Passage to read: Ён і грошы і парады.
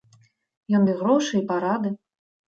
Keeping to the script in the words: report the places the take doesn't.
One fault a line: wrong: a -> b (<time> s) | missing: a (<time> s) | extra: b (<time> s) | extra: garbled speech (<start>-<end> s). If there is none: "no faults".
no faults